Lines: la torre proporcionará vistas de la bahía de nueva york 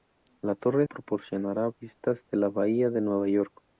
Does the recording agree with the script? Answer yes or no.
yes